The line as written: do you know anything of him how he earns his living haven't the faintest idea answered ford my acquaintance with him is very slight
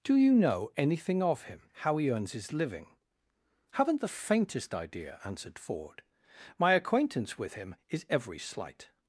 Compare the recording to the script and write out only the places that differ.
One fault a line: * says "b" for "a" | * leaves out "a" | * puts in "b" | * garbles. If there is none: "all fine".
* says "every" for "very"